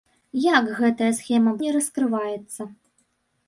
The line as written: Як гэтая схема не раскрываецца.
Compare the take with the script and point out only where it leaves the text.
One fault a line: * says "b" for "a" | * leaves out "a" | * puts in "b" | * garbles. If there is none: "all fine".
all fine